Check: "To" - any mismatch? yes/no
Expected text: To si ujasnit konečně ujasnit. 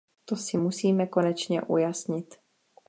no